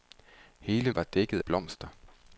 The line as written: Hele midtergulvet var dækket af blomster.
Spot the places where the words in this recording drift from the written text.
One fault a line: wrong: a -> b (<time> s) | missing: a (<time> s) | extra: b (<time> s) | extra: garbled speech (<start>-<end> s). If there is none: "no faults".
missing: midtergulvet (0.9 s)
missing: af (1.4 s)